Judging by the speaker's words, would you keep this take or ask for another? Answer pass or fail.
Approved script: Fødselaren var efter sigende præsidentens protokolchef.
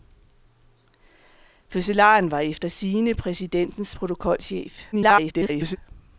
fail